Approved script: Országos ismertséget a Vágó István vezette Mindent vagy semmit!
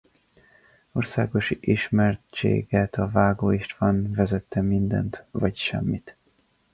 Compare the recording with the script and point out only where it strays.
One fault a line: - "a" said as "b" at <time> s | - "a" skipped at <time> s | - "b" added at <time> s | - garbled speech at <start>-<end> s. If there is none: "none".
none